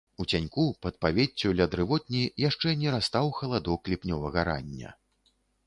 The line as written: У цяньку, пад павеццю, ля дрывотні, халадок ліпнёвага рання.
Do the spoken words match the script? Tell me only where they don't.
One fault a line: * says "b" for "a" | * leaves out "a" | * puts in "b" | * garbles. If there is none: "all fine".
* puts in "яшчэ не растаў"